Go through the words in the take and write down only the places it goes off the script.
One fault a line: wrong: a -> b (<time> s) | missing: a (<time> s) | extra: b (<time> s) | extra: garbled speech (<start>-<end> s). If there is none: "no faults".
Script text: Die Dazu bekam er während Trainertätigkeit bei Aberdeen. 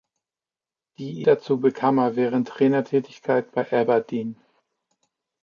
no faults